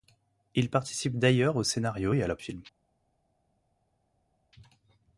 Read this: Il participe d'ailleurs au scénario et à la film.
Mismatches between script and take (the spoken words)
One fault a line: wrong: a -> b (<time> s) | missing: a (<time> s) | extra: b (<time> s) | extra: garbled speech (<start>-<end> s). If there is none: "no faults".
no faults